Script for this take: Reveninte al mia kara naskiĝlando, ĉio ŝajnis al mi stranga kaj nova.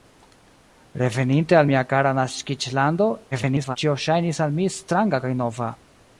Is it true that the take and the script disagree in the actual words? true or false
true